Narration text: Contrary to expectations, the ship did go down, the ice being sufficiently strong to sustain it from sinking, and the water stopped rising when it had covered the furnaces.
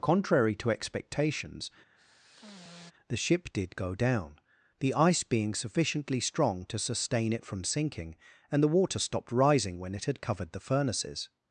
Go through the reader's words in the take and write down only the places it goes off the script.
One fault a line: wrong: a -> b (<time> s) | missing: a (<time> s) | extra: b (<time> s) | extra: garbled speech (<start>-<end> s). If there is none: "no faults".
no faults